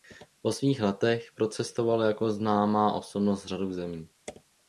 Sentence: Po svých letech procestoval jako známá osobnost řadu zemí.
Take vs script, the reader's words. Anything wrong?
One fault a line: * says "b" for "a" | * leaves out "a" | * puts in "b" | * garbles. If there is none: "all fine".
all fine